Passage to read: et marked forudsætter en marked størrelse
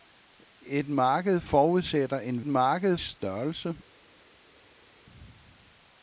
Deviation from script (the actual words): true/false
false